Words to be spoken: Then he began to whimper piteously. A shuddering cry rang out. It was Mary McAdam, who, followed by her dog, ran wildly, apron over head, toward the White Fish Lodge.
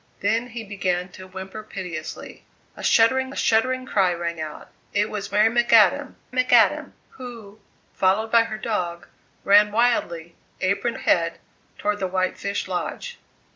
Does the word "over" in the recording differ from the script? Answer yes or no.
yes